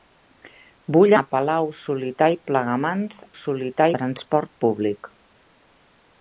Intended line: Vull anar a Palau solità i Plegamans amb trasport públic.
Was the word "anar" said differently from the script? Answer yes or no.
yes